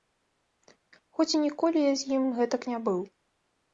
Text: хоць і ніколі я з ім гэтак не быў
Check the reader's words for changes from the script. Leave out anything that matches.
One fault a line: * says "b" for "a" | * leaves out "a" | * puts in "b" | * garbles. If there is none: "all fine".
all fine